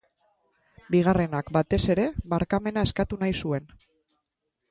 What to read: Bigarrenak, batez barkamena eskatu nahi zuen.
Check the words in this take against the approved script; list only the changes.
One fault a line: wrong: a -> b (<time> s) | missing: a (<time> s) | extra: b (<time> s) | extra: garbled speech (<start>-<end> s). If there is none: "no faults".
extra: ere (1.9 s)